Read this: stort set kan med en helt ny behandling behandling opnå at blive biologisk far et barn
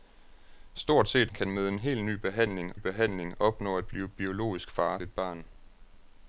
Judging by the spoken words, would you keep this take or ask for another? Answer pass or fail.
pass